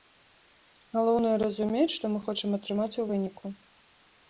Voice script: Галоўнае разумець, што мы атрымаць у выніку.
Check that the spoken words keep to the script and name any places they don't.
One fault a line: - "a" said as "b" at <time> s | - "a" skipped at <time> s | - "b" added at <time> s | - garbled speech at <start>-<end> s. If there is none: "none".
- "хочам" added at 2.2 s